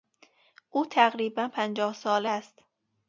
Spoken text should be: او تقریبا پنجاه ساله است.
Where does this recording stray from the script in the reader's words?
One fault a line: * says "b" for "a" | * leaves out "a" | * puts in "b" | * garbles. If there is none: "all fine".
all fine